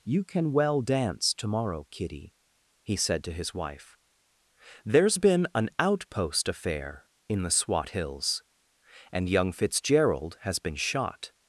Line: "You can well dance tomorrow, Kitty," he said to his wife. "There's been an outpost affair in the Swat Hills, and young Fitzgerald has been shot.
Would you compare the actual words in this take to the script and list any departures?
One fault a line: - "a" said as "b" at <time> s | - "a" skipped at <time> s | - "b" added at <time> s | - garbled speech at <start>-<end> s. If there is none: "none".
none